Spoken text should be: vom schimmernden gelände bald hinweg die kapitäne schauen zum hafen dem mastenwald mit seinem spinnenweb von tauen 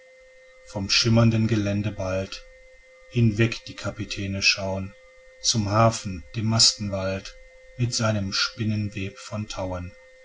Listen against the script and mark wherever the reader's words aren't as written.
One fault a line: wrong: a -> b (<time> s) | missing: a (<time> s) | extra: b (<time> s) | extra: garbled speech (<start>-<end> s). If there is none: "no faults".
no faults